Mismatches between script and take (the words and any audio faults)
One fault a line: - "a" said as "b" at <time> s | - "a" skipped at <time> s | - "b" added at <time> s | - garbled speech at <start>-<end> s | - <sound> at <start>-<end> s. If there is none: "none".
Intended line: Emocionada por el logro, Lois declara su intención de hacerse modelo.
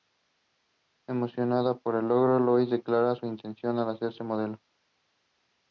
none